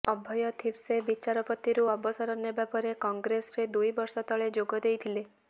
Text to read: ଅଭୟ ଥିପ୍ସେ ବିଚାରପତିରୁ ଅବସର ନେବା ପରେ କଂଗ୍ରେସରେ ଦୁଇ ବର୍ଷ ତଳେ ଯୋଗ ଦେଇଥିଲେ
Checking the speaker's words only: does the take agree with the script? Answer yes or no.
yes